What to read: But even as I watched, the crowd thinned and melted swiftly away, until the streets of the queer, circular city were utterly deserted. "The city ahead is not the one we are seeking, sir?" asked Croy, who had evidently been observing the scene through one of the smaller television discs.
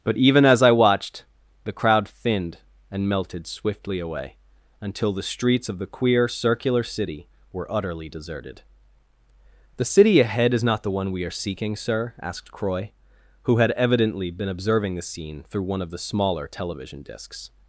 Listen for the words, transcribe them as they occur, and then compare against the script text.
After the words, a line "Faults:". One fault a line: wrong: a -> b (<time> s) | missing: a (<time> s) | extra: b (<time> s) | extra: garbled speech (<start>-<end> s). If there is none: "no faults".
But even as I watched, the crowd thinned and melted swiftly away, until the streets of the queer, circular city were utterly deserted. "The city ahead is not the one we are seeking, sir?" asked Croy, who had evidently been observing the scene through one of the smaller television discs.
Faults:
no faults